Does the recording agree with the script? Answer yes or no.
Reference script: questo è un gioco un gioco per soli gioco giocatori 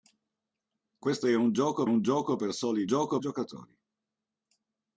yes